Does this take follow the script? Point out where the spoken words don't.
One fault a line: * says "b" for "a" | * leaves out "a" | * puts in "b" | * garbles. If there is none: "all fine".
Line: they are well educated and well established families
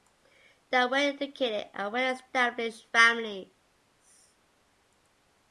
all fine